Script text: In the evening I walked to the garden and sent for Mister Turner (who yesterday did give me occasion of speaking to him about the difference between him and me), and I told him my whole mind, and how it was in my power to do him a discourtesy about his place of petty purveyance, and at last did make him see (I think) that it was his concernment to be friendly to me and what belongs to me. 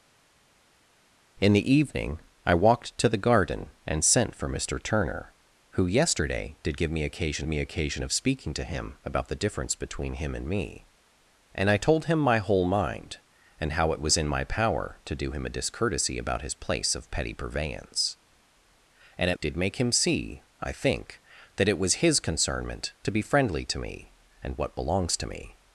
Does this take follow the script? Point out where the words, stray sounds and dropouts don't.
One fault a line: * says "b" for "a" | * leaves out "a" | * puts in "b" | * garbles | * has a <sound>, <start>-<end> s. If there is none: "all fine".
* puts in "me occasion"
* leaves out "last"